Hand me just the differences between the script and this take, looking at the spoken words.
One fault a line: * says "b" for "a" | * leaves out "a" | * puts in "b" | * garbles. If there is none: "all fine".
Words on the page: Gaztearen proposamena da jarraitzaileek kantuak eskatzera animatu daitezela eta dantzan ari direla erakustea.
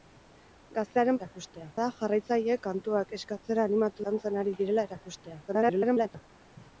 * says "erakustea" for "proposamena"
* leaves out "daitezela eta"
* garbles